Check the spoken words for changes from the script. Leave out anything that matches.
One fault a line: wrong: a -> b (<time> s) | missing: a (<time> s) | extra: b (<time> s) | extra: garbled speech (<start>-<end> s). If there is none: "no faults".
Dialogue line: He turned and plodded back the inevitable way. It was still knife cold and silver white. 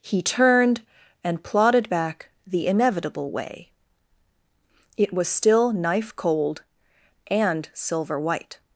no faults